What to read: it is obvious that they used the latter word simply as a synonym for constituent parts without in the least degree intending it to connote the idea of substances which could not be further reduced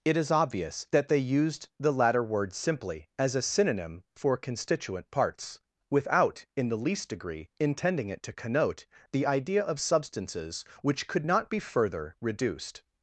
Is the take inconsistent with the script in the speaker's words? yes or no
no